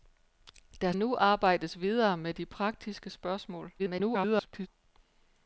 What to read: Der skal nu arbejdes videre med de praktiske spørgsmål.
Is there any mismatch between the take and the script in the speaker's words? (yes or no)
yes